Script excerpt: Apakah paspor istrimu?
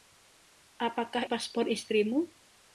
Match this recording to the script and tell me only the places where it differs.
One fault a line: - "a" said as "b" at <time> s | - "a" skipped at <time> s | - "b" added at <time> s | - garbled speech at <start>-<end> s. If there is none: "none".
none